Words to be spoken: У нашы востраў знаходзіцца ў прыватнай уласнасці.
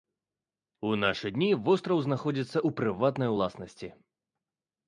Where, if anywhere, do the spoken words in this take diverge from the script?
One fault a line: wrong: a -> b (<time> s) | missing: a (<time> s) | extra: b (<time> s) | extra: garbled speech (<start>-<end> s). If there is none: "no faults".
extra: дні (1.3 s)